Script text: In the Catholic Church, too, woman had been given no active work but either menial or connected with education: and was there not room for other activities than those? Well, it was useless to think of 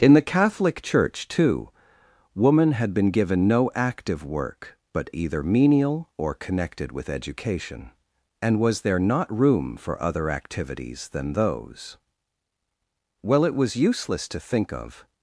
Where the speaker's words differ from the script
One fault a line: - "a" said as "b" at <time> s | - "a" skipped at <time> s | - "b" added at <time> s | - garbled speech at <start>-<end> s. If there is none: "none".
none